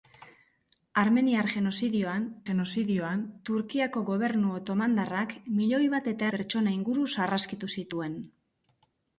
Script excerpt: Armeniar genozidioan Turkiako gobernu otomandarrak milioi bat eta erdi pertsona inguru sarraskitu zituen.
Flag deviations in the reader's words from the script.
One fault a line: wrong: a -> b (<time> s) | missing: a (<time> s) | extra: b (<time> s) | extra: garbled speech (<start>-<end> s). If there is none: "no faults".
extra: genozidioan (2.4 s)
missing: erdi (6.3 s)